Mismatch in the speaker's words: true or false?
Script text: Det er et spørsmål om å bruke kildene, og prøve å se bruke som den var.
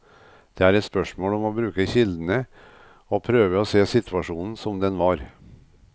true